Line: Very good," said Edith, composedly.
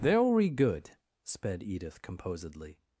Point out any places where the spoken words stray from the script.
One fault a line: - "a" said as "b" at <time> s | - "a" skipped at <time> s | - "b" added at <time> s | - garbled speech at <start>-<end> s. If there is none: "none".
- "said" said as "sped" at 1.2 s